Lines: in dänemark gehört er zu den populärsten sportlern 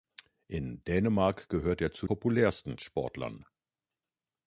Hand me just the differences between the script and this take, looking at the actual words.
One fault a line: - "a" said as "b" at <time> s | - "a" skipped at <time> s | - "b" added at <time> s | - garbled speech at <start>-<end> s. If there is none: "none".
- "den" skipped at 2.1 s